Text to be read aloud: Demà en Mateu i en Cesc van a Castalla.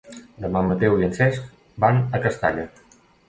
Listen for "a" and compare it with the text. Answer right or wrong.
right